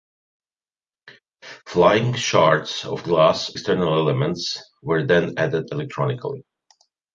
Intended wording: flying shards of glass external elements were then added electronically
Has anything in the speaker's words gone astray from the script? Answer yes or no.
no